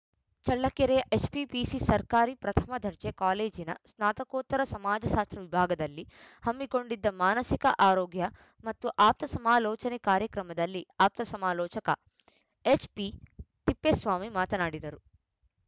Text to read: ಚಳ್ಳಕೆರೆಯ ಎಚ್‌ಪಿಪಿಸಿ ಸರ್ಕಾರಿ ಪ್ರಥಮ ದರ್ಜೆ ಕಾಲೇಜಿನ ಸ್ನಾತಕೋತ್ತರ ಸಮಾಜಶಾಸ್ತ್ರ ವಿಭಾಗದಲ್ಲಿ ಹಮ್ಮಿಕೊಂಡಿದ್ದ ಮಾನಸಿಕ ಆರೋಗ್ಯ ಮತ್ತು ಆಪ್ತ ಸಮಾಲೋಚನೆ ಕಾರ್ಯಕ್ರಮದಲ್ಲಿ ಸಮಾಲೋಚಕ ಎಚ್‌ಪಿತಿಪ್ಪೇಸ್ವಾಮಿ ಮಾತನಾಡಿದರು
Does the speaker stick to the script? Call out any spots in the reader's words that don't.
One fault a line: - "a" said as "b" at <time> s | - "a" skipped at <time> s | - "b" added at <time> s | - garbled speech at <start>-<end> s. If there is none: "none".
- "ಆಪ್ತ" added at 11.0 s